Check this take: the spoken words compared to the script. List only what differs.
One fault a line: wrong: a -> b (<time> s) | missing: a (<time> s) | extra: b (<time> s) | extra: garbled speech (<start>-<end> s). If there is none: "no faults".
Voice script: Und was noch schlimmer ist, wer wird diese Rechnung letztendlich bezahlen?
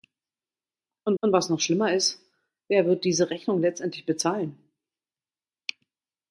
extra: und (1.2 s)